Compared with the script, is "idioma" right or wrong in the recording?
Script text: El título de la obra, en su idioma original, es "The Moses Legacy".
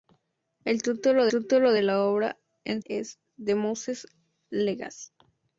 wrong